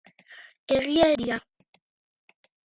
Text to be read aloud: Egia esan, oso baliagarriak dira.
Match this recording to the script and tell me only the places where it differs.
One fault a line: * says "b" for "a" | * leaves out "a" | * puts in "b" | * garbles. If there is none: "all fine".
* leaves out "esan oso baliagarriak"